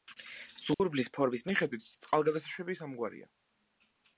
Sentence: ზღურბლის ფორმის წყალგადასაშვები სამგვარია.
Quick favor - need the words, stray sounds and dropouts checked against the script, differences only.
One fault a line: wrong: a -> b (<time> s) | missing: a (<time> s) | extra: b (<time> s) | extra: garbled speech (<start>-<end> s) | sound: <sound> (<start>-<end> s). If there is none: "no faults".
sound: dropout (0.7-0.8 s)
extra: მიხედვით (1.5 s)